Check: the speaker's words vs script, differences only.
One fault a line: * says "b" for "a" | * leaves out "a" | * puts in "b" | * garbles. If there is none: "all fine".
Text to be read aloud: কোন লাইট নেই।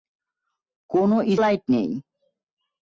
all fine